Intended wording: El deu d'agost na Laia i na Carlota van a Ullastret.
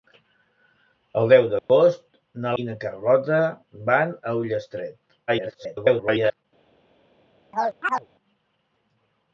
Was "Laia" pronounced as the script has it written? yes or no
no